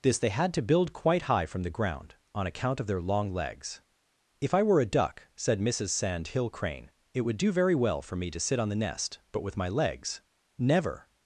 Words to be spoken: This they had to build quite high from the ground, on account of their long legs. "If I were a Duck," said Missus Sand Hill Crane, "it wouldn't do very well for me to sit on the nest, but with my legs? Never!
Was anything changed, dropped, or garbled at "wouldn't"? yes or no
yes